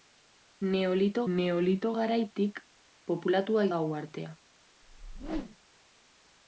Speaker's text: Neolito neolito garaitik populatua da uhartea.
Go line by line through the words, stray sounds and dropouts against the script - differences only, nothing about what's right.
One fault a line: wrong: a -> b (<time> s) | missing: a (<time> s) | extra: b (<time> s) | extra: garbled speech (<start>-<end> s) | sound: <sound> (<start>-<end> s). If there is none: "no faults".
sound: whoosh (4.8-5.6 s)